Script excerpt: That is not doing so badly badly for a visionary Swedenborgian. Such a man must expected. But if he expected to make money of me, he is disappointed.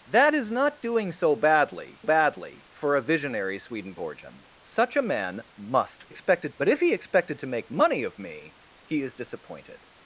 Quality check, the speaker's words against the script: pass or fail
pass